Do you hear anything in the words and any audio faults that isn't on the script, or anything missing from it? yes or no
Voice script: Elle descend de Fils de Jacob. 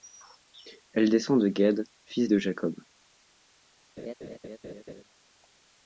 yes